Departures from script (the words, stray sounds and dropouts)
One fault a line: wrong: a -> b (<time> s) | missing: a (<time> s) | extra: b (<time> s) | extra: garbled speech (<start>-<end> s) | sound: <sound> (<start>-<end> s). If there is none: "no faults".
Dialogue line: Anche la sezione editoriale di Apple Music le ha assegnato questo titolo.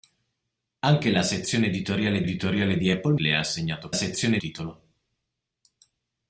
extra: editoriale (2.2 s)
missing: Music (3.1 s)
wrong: questo -> sezione (3.9 s)